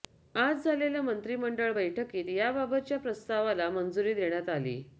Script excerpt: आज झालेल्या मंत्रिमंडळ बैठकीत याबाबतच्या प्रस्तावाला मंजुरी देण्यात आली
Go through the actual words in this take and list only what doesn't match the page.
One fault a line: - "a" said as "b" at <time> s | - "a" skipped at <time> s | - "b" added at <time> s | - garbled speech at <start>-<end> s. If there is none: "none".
none